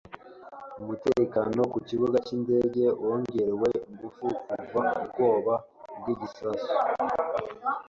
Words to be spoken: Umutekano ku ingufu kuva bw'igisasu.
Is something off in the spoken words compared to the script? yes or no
yes